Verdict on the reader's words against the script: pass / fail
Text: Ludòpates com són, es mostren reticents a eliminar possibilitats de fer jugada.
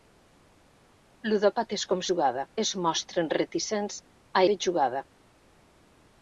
fail